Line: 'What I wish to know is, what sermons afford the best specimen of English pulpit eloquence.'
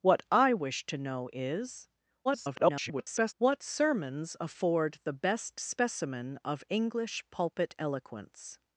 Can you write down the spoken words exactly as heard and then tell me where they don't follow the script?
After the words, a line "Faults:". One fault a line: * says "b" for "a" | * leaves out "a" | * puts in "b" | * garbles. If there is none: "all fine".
'What I wish to know is, [garbled] what sermons afford the best specimen of English pulpit eloquence.'
Faults:
* garbles